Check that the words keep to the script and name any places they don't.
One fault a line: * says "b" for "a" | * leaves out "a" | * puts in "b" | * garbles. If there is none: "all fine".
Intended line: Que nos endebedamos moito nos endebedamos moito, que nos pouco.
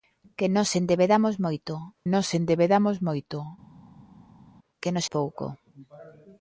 all fine